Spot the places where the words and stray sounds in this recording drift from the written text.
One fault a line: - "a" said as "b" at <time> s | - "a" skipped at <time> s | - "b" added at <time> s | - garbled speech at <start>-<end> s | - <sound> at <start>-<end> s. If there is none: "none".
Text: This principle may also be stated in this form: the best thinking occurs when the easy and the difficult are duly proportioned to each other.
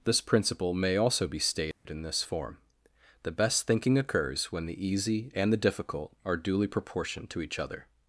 - dropout at 1.7-1.9 s